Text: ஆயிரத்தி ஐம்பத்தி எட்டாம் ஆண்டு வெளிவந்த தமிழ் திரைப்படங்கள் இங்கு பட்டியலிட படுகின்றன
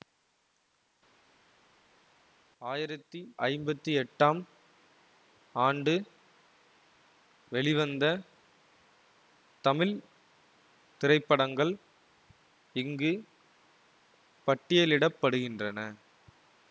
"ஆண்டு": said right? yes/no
yes